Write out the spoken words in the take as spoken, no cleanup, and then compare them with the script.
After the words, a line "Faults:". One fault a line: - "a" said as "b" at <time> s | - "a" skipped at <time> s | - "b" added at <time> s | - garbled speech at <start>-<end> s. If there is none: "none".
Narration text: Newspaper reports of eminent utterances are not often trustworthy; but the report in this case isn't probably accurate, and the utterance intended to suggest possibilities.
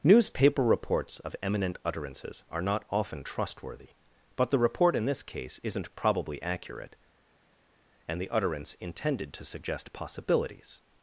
Newspaper reports of eminent utterances are not often trustworthy; but the report in this case isn't probably accurate, and the utterance intended to suggest possibilities.
Faults:
none